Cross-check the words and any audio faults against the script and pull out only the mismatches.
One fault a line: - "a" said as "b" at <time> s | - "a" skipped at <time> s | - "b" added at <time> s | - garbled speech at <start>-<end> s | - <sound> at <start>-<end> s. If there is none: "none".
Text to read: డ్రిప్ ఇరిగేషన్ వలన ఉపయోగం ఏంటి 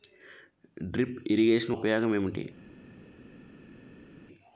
- "వలన" skipped at 1.8 s